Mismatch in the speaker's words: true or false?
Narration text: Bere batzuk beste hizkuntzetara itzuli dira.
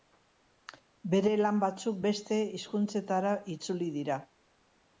true